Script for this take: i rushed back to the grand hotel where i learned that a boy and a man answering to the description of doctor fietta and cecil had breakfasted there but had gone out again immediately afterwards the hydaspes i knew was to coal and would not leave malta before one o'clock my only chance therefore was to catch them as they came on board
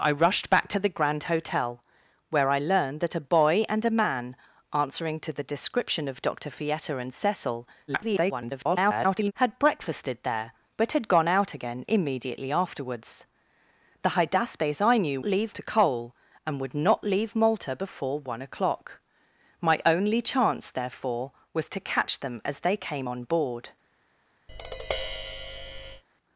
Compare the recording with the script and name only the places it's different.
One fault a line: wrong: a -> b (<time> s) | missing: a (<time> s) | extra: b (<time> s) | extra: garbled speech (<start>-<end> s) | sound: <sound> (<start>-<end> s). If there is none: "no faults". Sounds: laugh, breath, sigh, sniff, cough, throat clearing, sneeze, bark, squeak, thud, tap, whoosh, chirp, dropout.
extra: garbled speech (7.9-9.3 s)
wrong: was -> leave (15.2 s)
sound: tap (24.5-26.0 s)